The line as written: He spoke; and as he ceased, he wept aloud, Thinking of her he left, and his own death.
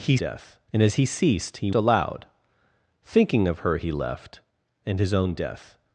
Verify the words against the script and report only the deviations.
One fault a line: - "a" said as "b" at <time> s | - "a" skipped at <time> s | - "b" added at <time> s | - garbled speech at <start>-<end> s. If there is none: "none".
- "spoke" said as "death" at 0.1 s
- "wept" skipped at 1.7 s